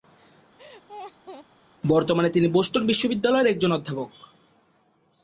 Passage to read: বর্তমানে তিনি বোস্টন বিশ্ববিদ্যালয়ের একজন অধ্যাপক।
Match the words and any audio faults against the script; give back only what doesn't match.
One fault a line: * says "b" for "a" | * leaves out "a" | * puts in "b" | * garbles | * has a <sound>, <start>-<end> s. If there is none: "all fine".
* has a laugh, 0.6-1.5 s